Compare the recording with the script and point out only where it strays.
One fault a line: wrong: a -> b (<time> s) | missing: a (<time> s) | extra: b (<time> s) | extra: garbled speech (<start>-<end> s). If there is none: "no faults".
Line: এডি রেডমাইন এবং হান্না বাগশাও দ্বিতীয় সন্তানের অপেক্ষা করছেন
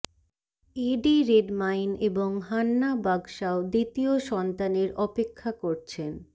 no faults